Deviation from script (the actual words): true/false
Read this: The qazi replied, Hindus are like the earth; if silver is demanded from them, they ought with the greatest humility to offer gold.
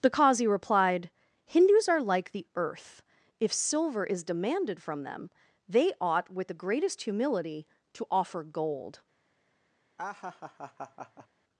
false